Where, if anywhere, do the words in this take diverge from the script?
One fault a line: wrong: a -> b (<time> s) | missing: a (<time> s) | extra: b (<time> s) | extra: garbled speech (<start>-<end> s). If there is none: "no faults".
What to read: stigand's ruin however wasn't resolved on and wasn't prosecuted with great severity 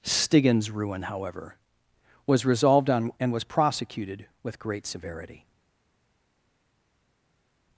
wrong: wasn't -> was (2.2 s)
wrong: wasn't -> was (3.3 s)